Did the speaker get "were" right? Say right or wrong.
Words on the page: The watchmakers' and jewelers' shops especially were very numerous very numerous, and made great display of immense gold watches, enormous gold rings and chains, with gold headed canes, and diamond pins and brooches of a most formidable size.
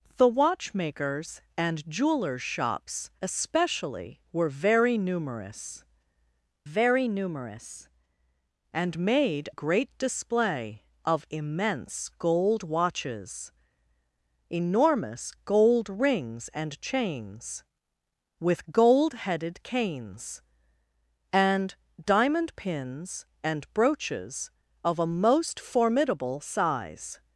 right